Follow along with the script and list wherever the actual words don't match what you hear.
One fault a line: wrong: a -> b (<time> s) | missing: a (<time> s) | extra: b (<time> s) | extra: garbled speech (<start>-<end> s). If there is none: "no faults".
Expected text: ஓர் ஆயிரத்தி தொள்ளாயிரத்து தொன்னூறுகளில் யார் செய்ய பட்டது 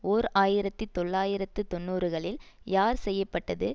no faults